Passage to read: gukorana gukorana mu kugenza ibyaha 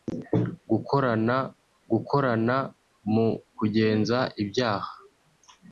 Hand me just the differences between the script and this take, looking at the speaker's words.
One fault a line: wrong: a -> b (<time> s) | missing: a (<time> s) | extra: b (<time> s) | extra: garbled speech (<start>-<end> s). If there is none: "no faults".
no faults